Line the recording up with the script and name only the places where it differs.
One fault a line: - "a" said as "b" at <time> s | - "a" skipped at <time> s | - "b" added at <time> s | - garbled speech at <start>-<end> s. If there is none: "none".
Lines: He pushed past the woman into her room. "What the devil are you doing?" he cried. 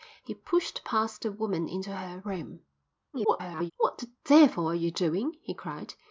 - garbled speech at 3.1-3.7 s